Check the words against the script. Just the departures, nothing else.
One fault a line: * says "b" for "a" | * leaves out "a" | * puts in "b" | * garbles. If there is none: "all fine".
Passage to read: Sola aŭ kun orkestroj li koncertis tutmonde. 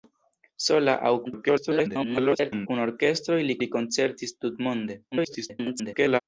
* garbles
* puts in "li"
* garbles